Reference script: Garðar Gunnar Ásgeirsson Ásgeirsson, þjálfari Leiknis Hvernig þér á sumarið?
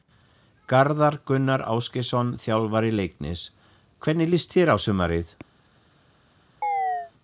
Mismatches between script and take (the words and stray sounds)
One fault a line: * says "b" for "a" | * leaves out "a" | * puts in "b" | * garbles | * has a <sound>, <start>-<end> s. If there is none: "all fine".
* leaves out "Ásgeirsson"
* puts in "líst"
* has a chirp, 6.6-7.1 s